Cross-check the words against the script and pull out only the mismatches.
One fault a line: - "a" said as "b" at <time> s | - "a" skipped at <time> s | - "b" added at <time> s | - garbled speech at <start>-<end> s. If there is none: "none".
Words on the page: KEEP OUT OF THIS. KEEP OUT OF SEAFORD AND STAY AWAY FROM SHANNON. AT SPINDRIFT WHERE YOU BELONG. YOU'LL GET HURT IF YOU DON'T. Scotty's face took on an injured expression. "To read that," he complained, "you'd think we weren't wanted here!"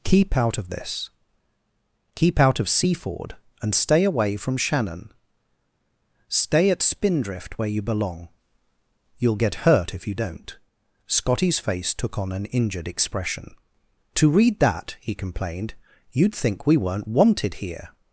- "STAY" added at 6.3 s